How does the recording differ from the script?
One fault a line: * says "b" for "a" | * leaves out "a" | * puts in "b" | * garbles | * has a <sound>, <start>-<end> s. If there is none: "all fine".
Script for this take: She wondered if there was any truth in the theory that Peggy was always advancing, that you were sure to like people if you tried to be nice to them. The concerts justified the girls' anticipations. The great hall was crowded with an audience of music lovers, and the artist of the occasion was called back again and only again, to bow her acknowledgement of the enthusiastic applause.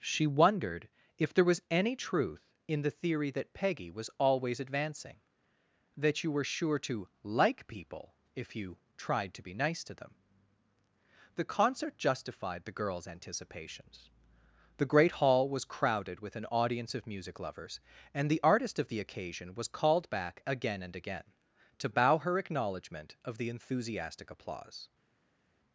* says "concert" for "concerts"
* leaves out "only"